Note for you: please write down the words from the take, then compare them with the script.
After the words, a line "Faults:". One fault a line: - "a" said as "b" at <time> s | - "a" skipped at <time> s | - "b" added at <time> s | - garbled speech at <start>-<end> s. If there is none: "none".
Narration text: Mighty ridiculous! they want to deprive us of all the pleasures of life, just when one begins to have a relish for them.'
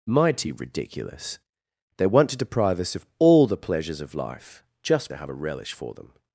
Mighty ridiculous! they want to deprive us of all the pleasures of life, just to have a relish for them.'
Faults:
- "when one begins" skipped at 5.1 s